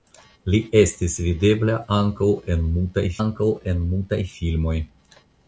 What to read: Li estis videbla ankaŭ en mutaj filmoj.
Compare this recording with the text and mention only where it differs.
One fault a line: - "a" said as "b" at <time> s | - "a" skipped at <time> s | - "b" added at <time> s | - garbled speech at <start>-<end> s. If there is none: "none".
- "ankaŭ en mutaj" added at 3.2 s